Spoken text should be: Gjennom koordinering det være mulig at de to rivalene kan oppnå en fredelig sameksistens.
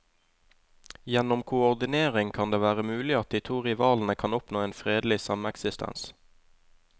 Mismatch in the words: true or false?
true